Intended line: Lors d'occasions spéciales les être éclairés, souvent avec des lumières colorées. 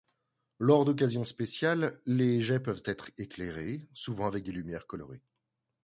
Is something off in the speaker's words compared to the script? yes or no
yes